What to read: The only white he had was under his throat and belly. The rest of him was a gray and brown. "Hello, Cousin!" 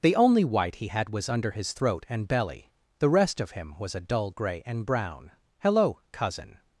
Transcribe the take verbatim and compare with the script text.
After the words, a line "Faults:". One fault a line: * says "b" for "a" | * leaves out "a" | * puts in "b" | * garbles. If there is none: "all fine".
The only white he had was under his throat and belly. The rest of him was a dull gray and brown. "Hello, Cousin!"
Faults:
* puts in "dull"